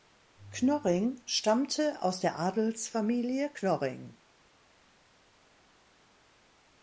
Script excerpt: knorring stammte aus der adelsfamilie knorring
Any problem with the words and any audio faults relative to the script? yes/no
no